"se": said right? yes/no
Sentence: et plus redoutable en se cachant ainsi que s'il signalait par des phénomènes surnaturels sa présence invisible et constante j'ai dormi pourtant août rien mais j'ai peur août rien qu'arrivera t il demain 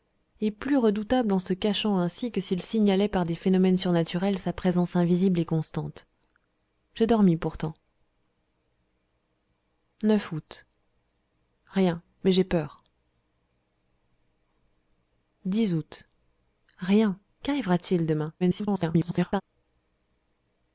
yes